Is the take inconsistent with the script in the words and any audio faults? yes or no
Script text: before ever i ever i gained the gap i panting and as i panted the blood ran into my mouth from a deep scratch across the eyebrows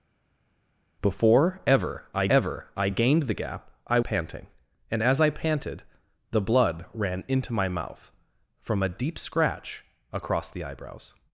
no